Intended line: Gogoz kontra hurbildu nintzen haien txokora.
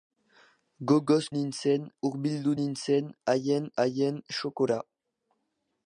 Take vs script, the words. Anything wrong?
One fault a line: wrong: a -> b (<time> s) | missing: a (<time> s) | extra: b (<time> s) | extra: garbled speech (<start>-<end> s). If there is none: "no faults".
wrong: kontra -> nintzen (1.4 s)
extra: haien (3.9 s)